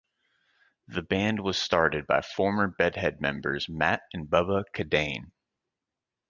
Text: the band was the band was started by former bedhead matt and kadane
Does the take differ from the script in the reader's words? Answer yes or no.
yes